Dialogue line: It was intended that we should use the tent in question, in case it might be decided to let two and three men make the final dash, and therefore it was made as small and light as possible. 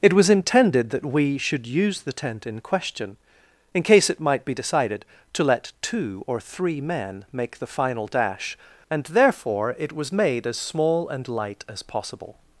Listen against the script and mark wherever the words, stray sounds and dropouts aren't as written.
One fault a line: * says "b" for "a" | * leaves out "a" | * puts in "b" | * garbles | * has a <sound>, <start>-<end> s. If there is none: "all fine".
* says "or" for "and"